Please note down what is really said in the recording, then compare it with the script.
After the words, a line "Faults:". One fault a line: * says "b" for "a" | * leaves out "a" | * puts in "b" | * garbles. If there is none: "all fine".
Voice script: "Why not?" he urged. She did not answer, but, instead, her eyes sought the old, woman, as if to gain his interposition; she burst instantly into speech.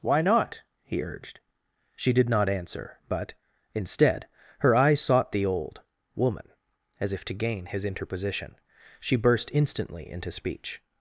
"Why not?" he urged. She did not answer, but, instead, her eyes sought the old, woman, as if to gain his interposition; she burst instantly into speech.
Faults:
all fine